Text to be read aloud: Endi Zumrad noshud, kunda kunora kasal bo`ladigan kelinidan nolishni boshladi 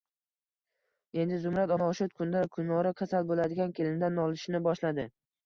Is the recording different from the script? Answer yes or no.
no